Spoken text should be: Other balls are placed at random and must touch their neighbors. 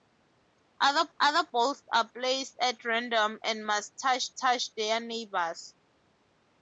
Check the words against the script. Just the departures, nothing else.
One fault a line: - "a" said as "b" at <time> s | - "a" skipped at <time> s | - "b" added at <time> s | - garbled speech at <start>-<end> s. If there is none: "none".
- "other" added at 1.2 s
- "touch" added at 4.4 s